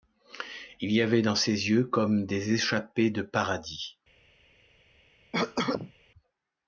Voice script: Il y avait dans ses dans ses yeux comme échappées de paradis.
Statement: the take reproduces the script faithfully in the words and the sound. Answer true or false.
false